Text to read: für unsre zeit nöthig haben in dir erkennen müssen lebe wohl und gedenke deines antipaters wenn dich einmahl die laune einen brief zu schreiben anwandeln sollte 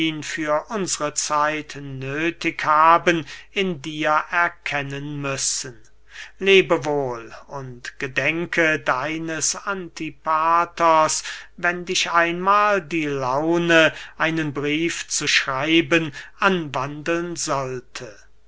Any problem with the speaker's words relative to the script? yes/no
no